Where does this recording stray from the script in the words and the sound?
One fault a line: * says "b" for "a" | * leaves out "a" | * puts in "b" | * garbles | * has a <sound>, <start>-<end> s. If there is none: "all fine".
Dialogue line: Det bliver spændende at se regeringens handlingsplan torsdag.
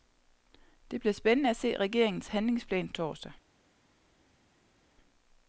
all fine